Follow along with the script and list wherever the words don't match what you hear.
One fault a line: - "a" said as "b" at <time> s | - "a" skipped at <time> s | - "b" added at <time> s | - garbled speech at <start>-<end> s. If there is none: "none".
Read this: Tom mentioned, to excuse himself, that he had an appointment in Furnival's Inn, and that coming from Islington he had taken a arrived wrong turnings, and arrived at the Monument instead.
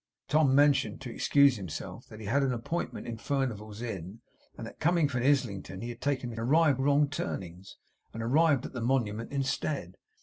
none